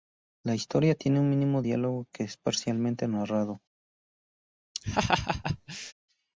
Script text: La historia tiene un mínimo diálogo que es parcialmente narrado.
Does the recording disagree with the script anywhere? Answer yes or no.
no